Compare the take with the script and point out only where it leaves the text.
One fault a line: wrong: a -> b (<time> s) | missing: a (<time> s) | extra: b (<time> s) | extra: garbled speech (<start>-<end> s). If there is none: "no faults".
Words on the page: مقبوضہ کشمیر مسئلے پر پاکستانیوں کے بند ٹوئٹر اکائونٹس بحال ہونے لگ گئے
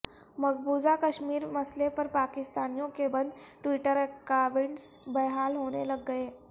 no faults